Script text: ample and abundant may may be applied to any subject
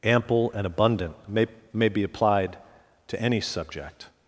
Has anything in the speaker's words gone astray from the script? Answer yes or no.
no